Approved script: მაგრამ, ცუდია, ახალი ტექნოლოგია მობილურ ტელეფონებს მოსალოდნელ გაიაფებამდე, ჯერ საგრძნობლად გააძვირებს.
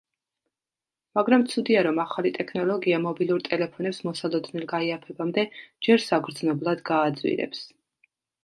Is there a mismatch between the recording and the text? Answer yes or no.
yes